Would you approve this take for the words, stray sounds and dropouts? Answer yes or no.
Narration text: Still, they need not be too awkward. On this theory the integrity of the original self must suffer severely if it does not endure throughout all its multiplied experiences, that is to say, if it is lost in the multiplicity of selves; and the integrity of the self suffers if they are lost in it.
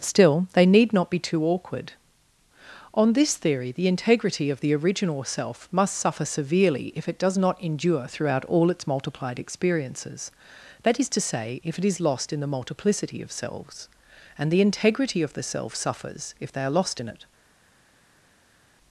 yes